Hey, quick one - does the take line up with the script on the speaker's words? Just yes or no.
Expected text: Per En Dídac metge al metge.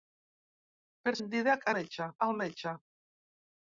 yes